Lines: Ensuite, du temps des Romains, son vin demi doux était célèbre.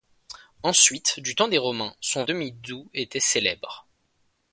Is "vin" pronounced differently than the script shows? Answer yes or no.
yes